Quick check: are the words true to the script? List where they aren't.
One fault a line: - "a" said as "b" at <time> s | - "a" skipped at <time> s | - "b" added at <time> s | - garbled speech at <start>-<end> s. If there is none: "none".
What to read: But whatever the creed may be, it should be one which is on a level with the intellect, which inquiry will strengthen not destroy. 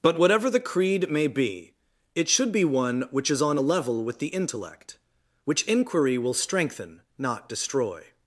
none